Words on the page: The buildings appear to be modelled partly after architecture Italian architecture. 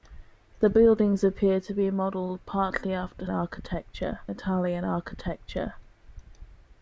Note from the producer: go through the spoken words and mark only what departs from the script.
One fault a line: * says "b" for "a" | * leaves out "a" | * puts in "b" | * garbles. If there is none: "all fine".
all fine